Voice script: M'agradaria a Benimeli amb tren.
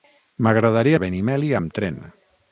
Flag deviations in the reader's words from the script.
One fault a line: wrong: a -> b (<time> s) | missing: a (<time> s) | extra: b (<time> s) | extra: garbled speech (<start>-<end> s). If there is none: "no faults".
no faults